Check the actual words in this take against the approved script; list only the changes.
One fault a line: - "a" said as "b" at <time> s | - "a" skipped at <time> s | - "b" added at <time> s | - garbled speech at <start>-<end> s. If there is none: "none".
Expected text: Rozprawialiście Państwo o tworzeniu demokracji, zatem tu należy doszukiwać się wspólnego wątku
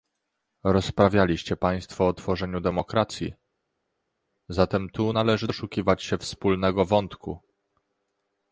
none